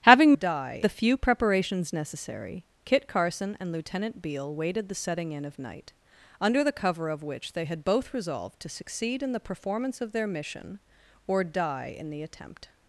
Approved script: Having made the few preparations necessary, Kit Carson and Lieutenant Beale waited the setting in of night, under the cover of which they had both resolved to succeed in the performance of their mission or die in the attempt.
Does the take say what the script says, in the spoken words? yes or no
no